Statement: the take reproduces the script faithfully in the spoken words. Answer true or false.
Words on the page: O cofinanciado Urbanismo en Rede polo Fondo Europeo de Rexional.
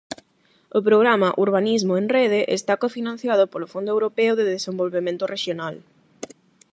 false